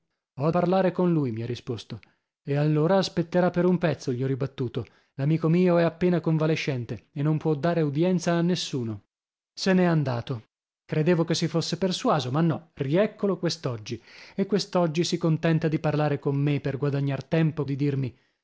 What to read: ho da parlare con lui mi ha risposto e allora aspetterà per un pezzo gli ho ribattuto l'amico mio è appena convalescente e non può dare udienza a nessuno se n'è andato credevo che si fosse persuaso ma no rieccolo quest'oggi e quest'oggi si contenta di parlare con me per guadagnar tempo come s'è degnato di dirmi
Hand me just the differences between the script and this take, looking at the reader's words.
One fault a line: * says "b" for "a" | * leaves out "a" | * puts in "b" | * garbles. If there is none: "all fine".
* leaves out "da"
* leaves out "come s'è degnato"